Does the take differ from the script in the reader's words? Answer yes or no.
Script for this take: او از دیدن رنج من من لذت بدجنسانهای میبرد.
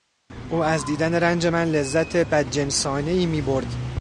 yes